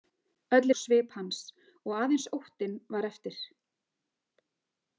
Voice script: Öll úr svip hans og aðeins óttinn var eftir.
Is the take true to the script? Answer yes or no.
yes